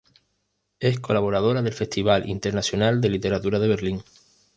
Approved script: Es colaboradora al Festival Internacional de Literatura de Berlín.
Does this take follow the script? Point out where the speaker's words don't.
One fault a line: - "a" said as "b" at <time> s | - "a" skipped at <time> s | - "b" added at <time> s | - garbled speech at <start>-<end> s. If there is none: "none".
- "al" said as "del" at 1.6 s